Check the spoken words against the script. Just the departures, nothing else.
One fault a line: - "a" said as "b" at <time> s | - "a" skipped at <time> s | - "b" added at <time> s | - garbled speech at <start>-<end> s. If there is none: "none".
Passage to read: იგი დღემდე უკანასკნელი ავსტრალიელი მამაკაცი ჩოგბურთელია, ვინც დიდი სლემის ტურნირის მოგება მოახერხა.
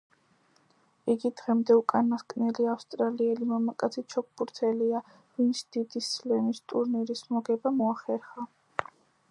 none